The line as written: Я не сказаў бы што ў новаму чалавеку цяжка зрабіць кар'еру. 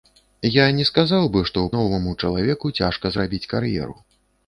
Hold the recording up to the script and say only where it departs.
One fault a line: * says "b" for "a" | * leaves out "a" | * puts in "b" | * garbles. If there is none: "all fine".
all fine